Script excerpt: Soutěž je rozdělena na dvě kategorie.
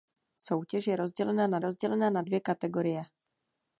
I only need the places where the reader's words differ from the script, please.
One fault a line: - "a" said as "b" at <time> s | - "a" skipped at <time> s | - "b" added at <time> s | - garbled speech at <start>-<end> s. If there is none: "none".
- "rozdělena na" added at 1.6 s